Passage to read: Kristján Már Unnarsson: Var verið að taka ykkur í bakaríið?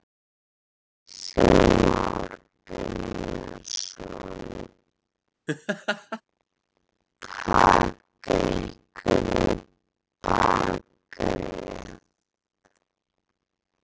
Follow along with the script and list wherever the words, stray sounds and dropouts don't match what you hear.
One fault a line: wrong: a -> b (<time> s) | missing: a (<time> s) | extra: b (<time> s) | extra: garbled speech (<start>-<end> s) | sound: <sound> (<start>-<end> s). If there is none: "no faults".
missing: Var verið að (4.4 s)
sound: laugh (5.5-6.2 s)